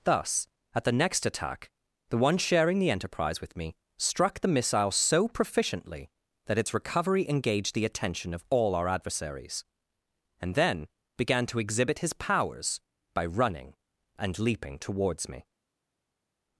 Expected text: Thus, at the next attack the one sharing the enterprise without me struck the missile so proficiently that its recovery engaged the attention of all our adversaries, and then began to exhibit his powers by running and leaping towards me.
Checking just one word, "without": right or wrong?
wrong